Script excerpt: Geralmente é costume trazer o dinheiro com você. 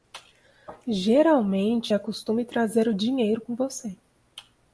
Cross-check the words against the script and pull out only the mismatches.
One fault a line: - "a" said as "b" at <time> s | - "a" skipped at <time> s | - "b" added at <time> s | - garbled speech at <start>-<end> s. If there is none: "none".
none